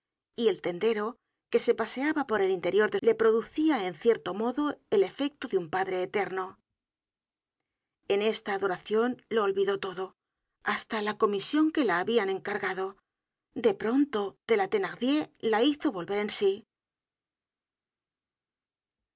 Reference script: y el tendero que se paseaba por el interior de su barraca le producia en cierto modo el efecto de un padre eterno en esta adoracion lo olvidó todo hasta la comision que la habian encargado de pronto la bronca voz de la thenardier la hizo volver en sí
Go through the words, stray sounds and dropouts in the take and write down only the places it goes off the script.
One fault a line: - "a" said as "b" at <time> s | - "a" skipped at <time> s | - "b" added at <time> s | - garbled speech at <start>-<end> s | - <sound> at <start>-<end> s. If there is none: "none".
- "su barraca" skipped at 3.0 s
- "la bronca voz" skipped at 14.4 s